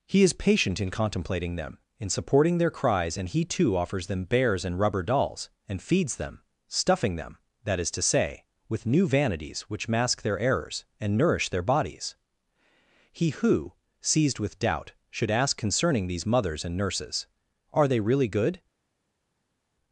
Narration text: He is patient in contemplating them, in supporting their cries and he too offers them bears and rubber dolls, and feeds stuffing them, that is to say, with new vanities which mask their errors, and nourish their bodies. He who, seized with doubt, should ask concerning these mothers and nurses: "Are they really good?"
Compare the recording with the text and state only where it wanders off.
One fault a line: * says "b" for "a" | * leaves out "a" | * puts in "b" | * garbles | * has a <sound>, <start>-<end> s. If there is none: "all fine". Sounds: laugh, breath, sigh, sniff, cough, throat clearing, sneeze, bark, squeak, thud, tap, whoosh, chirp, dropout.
* puts in "them"